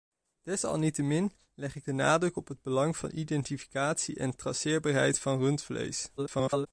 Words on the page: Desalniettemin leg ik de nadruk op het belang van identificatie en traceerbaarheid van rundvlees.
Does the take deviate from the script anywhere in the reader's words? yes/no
yes